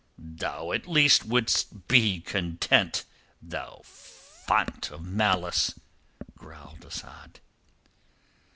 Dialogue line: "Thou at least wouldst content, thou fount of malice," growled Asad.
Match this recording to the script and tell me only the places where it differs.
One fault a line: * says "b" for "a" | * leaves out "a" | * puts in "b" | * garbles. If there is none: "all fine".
* puts in "be"